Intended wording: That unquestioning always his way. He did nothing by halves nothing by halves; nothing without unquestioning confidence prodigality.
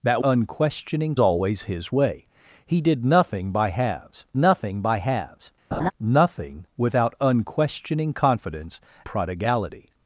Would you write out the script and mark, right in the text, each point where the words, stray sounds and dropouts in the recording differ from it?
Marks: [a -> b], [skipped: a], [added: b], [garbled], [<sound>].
That unquestioning always his way. He did nothing by halves nothing by halves; [laugh] nothing without unquestioning confidence prodigality.